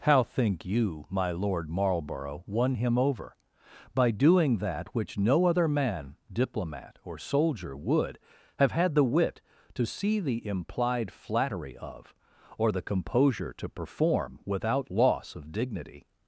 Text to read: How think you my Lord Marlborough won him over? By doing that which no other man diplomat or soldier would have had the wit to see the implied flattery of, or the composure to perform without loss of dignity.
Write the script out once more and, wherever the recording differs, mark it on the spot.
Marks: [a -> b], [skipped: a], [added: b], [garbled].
How think you my Lord Marlborough won him over? By doing that which no other man diplomat or soldier would have had the wit to see the implied flattery of, or the composure to perform without loss of dignity.